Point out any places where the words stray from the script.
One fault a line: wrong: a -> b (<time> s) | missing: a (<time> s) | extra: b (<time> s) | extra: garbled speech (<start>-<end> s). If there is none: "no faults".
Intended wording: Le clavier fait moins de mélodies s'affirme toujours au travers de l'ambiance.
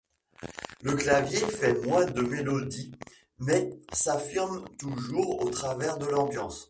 extra: mais (3.4 s)